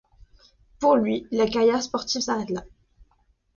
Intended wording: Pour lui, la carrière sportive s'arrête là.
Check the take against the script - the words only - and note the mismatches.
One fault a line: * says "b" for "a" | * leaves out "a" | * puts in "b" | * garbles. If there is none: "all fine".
all fine